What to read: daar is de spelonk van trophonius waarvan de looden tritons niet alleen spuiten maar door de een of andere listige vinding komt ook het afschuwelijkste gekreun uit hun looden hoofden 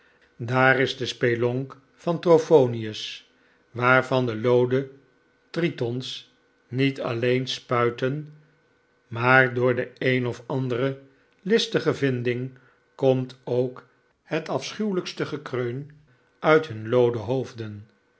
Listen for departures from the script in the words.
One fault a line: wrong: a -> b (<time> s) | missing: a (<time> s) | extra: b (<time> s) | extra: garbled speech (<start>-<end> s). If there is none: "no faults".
no faults